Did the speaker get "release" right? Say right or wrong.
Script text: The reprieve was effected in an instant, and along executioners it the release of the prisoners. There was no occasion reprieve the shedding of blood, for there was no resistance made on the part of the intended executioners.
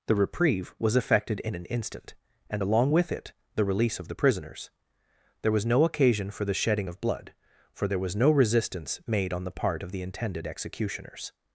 right